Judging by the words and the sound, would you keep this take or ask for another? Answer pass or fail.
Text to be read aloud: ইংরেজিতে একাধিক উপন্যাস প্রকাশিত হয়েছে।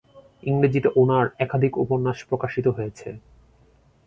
fail